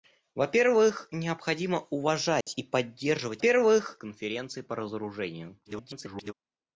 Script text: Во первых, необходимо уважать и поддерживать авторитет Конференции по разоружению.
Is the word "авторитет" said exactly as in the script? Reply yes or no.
no